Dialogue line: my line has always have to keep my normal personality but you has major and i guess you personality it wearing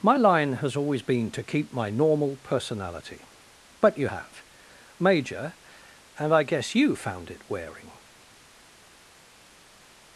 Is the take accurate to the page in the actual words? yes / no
no